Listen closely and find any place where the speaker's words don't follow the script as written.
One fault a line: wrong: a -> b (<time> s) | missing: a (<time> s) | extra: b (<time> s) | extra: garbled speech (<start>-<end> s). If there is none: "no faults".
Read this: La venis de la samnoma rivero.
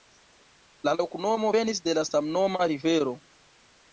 extra: loknomo (1.0 s)